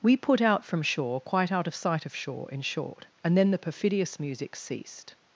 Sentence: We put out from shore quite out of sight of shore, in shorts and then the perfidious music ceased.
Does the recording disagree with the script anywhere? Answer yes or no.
yes